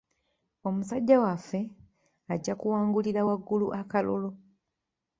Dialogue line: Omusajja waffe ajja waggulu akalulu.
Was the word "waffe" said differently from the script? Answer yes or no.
no